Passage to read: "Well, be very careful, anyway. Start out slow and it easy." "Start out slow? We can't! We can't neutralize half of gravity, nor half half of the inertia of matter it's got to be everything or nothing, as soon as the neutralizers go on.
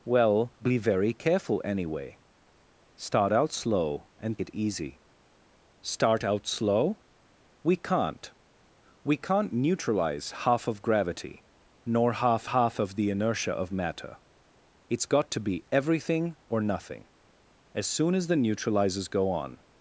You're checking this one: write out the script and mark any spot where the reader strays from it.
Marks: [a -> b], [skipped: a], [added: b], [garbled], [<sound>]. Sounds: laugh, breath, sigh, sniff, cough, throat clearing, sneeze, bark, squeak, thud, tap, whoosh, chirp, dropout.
"Well, be very careful, anyway. Start out slow and it easy." "Start out slow? We can't! We can't neutralize half of gravity, nor half half of the inertia of matter it's got to be everything or nothing, as soon as the neutralizers go on.